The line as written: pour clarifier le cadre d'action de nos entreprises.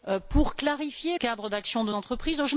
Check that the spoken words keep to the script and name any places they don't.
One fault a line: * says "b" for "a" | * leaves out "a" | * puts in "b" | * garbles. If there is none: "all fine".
* leaves out "le"
* leaves out "nos"